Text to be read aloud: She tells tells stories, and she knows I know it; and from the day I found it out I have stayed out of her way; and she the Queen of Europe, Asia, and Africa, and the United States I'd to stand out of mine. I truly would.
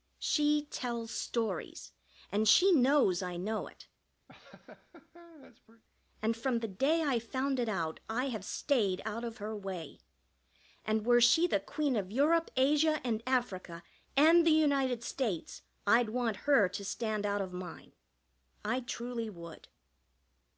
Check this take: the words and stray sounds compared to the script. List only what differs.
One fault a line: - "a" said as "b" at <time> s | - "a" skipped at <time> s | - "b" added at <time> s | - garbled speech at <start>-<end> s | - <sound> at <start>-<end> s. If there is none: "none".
- "tells" skipped at 1.1 s
- laugh at 4.3-5.8 s
- "were" added at 11.1 s
- "want her" added at 16.1 s